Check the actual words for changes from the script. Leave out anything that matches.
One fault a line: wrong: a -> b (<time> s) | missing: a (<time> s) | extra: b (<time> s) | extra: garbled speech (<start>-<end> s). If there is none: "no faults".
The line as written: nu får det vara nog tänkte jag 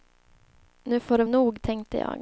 missing: vara (1.2 s)